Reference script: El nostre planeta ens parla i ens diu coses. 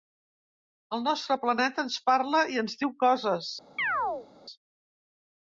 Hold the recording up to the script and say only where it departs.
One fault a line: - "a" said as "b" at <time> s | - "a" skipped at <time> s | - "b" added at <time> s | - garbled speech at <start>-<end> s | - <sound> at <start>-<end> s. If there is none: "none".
- chirp at 3.8-4.3 s